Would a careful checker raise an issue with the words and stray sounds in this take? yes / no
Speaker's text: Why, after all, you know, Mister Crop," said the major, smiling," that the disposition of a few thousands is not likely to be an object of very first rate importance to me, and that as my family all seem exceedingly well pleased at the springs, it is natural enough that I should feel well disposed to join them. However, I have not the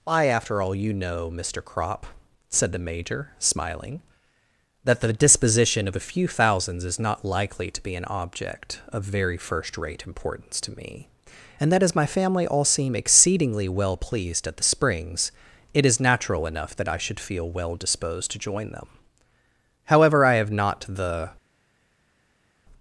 no